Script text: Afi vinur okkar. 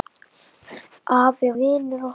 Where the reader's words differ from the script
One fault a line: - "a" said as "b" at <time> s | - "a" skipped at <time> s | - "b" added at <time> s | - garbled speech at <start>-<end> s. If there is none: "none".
none